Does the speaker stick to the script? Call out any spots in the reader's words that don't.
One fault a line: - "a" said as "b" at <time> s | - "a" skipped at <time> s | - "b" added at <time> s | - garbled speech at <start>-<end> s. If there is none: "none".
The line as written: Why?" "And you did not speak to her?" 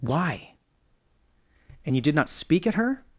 - "to" said as "at" at 2.7 s